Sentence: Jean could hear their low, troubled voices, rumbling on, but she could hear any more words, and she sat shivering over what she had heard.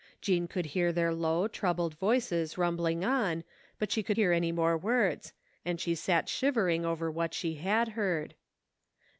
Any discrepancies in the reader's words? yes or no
no